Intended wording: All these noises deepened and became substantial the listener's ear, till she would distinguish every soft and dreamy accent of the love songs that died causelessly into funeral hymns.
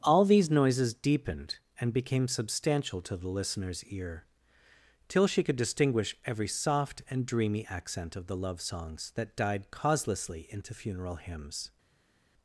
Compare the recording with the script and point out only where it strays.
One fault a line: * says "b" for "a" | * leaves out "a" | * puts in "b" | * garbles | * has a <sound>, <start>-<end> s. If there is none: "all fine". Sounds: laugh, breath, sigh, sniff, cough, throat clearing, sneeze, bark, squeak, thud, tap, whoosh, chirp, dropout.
* puts in "to"
* says "could" for "would"